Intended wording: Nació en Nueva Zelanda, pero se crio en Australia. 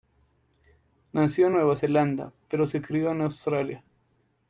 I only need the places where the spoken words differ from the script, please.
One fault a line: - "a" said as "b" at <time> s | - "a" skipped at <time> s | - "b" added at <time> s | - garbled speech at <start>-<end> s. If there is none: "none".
none